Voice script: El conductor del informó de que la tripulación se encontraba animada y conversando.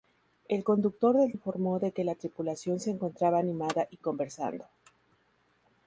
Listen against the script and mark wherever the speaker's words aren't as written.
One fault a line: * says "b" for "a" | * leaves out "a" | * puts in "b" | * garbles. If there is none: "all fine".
all fine